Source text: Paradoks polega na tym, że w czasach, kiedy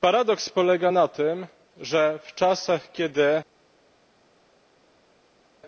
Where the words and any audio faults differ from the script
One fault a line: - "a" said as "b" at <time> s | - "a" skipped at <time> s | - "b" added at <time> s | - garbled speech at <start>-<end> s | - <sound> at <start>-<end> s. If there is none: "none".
none